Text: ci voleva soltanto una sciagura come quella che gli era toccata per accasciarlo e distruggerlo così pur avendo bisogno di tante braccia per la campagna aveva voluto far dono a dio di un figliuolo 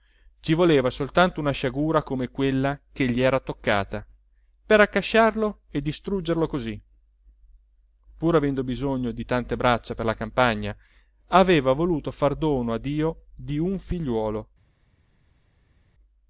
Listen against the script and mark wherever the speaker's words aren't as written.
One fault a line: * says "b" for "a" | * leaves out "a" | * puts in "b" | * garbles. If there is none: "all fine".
all fine